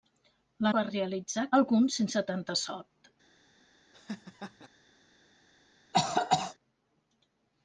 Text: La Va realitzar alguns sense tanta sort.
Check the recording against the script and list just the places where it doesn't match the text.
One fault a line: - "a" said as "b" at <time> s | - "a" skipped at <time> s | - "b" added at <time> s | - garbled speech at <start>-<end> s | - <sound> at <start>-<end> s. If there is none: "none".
- laugh at 3.9-4.7 s
- cough at 5.9-6.6 s